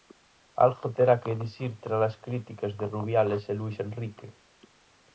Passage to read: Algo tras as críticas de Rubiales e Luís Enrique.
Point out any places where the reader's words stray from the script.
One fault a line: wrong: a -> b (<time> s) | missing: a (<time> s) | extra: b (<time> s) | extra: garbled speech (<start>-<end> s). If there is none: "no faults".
extra: terá que dicir (1.0 s)